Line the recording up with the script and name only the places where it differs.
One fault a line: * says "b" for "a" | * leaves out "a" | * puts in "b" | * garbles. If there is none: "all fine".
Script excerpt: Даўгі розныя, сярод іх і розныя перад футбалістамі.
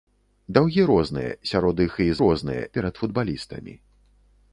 all fine